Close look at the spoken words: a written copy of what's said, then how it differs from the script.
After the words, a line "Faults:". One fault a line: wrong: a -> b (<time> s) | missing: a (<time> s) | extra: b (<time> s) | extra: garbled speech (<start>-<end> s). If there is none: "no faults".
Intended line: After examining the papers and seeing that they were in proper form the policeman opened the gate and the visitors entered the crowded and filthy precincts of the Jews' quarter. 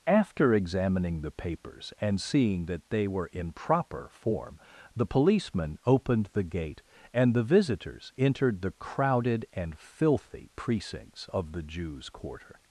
After examining the papers and seeing that they were in proper form the policeman opened the gate and the visitors entered the crowded and filthy precincts of the Jews' quarter.
Faults:
no faults